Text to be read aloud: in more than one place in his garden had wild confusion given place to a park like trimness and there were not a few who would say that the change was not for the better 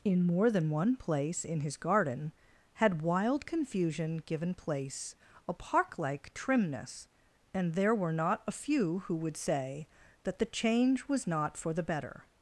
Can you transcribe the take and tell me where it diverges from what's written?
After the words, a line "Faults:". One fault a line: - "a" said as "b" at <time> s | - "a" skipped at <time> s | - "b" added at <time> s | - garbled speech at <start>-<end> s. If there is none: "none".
in more than one place in his garden had wild confusion given place a park like trimness and there were not a few who would say that the change was not for the better
Faults:
- "to" skipped at 5.2 s